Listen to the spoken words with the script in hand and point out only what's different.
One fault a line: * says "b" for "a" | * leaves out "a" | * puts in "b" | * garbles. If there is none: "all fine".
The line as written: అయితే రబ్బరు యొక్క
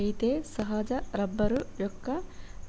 * puts in "సహజ"